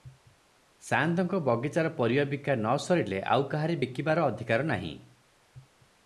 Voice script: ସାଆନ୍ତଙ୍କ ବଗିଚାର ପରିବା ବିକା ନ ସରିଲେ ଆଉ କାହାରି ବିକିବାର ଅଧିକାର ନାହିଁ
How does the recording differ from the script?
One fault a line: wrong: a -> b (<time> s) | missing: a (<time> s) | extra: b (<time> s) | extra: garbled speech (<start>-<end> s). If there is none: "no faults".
no faults